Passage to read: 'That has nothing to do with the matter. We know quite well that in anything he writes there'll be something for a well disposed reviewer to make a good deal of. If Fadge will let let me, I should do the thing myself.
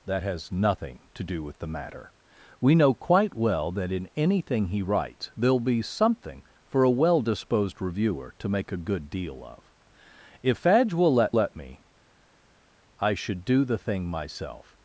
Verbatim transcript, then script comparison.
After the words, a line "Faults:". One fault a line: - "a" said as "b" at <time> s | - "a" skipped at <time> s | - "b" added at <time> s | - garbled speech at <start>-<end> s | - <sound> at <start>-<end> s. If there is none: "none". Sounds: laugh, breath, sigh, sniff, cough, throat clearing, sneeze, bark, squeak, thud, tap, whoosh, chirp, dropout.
'That has nothing to do with the matter. We know quite well that in anything he writes there'll be something for a well disposed reviewer to make a good deal of. If Fadge will let let me, I should do the thing myself.
Faults:
none